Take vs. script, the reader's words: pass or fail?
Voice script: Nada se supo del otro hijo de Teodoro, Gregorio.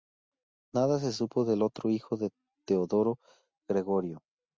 pass